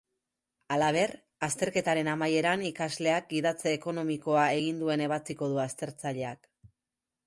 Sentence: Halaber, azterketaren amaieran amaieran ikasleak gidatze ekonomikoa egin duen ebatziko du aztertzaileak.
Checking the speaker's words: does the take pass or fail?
fail